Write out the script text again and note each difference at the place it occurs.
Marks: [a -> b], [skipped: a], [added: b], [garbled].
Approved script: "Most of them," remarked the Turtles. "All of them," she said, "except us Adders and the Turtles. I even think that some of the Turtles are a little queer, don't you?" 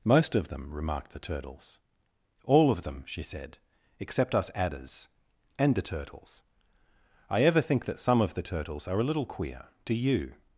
"Most of them," remarked the Turtles. "All of them," she said, "except us Adders and the Turtles. I [even -> ever] think that some of the Turtles are a little queer, [don't -> do] you?"